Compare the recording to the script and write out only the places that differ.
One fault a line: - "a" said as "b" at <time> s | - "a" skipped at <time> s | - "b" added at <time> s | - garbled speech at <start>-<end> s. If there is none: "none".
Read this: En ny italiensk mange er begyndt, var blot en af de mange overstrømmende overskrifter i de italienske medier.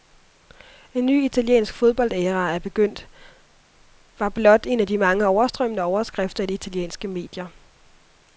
- "mange" said as "fodboldæra" at 1.7 s